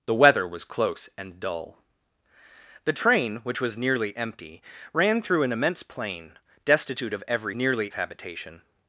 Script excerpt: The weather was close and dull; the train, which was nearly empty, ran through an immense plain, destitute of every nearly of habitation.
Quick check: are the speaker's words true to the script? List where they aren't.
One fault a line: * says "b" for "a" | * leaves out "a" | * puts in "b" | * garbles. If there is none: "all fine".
all fine